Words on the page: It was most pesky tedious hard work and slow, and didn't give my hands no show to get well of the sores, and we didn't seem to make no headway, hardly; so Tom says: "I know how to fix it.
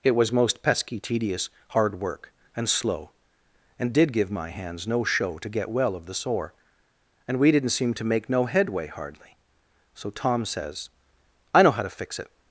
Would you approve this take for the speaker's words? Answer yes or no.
no